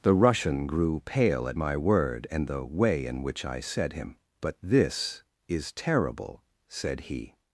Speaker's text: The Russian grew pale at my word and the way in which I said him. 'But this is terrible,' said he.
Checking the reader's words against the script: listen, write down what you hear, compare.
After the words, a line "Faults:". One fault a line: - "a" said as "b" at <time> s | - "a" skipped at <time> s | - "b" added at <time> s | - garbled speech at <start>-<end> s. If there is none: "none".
The Russian grew pale at my word and the way in which I said him. 'But this is terrible,' said he.
Faults:
none